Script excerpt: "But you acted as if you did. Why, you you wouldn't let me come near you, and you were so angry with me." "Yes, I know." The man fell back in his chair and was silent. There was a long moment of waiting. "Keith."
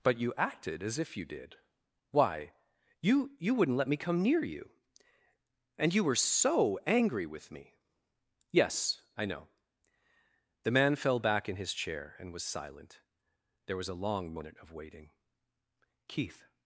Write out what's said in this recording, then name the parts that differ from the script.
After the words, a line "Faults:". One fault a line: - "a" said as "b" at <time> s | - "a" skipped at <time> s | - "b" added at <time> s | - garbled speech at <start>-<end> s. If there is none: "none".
"But you acted as if you did. Why, you you wouldn't let me come near you, and you were so angry with me." "Yes, I know." The man fell back in his chair and was silent. There was a long moment of waiting. "Keith."
Faults:
none